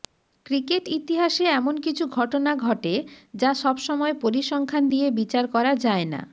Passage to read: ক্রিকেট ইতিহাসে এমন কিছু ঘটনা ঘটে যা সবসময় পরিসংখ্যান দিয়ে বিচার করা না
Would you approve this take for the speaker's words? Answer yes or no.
no